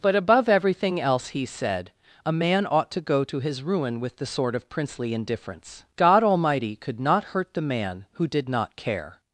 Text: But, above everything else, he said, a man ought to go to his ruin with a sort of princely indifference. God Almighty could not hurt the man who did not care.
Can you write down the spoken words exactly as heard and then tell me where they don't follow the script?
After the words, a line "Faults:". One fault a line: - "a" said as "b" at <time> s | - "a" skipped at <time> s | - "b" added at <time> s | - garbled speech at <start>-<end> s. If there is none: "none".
But, above everything else, he said, a man ought to go to his ruin with the sort of princely indifference. God Almighty could not hurt the man who did not care.
Faults:
- "a" said as "the" at 4.2 s